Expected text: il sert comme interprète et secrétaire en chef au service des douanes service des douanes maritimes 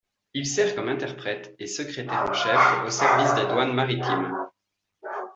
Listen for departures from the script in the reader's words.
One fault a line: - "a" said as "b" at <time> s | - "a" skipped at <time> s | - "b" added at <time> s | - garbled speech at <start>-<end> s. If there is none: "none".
- "service des douanes" skipped at 3.7 s